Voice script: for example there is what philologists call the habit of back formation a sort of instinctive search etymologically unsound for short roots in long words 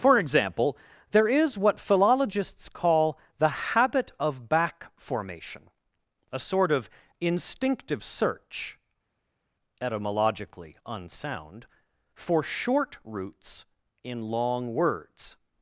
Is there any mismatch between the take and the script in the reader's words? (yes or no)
no